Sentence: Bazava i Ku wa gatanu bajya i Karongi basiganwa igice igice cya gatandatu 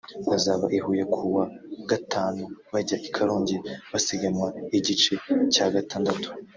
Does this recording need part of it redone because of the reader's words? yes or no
yes